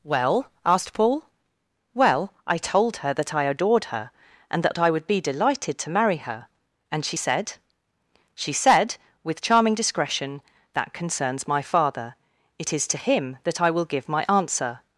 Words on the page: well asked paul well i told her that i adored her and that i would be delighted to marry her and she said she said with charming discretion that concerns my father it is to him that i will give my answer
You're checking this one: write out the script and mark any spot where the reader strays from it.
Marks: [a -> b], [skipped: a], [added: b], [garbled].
well asked paul well i told her that i adored her and that i would be delighted to marry her and she said she said with charming discretion that concerns my father it is to him that i will give my answer